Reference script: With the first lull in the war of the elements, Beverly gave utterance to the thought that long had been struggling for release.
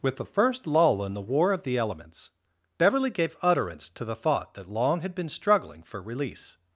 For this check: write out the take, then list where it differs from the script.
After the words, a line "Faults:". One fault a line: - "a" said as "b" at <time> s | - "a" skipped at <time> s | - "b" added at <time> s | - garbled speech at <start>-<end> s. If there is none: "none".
With the first lull in the war of the elements, Beverly gave utterance to the thought that long had been struggling for release.
Faults:
none